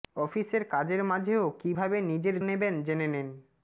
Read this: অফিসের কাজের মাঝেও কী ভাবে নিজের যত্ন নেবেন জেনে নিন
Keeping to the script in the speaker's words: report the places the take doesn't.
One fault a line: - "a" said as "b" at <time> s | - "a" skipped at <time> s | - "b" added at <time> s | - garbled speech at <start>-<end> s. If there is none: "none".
- "যত্ন" skipped at 2.4 s